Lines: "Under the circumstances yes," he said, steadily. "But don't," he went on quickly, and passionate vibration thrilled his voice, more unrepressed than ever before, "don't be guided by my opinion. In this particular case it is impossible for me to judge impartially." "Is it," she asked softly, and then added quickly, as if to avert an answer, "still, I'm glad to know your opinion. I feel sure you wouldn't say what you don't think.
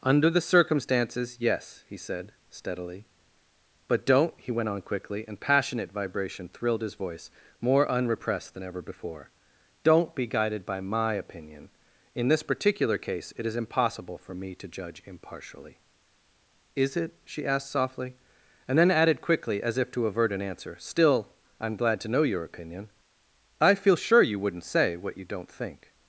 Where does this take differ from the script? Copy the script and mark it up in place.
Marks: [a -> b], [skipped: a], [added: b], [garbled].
"Under the circumstances yes," he said, steadily. "But don't," he went on quickly, and passionate vibration thrilled his voice, more unrepressed than ever before, "don't be guided by my opinion. In this particular case it is impossible for me to judge impartially." "Is it," she asked softly, and then added quickly, as if to avert an answer, "still, I'm glad to know your opinion. I feel sure you wouldn't say what you don't think.